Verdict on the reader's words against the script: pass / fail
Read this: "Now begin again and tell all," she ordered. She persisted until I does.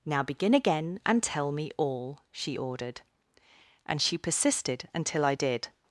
fail